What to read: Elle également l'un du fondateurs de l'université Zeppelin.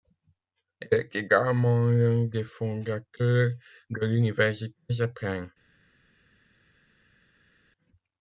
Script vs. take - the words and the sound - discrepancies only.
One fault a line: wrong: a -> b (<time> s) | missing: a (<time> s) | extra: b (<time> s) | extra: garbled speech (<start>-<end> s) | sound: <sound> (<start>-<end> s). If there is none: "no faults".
extra: est (0.9 s)
wrong: du -> des (2.2 s)